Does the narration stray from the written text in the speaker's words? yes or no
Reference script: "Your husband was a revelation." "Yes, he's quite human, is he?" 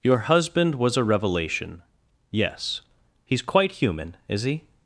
no